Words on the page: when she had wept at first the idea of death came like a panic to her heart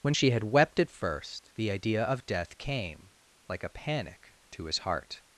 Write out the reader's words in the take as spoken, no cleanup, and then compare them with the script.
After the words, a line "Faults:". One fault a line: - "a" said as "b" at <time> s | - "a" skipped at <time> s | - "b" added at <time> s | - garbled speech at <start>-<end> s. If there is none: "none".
when she had wept at first the idea of death came like a panic to his heart
Faults:
- "her" said as "his" at 4.6 s